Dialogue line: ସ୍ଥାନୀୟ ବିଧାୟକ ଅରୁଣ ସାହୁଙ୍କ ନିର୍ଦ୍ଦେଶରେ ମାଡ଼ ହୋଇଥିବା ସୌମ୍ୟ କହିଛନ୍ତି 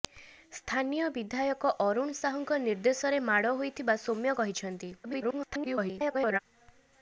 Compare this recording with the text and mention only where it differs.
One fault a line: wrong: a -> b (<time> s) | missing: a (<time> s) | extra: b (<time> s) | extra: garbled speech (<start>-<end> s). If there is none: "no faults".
extra: garbled speech (5.0-6.4 s)